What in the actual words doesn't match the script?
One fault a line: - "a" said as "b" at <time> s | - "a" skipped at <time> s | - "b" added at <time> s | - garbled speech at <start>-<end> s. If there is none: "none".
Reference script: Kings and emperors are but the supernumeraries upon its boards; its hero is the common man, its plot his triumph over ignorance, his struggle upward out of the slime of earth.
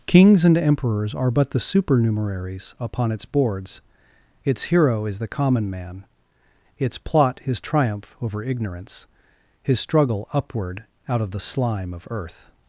none